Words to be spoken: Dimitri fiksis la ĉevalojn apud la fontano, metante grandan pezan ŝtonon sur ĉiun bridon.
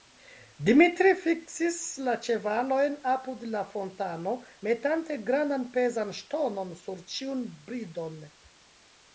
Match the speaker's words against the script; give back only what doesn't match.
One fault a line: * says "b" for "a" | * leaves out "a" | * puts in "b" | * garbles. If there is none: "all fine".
all fine